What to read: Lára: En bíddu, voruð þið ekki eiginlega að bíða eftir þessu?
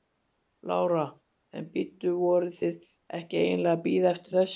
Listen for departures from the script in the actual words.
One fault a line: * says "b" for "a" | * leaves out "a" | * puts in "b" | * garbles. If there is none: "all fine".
all fine